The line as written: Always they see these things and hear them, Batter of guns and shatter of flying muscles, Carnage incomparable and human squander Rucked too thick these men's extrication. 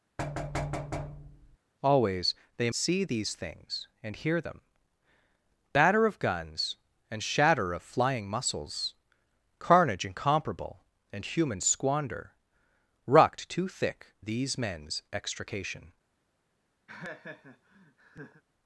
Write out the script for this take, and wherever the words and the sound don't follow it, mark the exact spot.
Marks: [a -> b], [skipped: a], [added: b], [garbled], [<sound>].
[thud] Always they see these things and hear them, Batter of guns and shatter of flying muscles, Carnage incomparable and human squander Rucked too thick these men's extrication. [laugh]